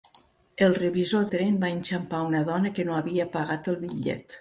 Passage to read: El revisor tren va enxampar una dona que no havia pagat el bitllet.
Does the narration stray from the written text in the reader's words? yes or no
no